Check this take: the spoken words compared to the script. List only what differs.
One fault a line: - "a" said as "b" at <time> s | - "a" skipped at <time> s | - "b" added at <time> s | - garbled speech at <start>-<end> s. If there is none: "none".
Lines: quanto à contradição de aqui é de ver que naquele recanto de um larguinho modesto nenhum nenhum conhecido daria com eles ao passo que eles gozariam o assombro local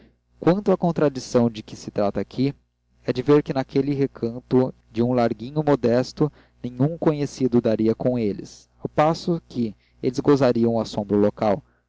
- "que se trata" added at 1.6 s
- "nenhum" skipped at 7.0 s